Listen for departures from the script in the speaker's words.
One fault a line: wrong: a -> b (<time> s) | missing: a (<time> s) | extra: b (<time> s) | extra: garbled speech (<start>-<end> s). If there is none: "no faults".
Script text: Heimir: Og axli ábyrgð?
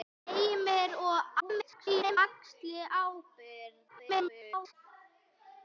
extra: garbled speech (1.4-2.2 s)
extra: garbled speech (3.9-4.7 s)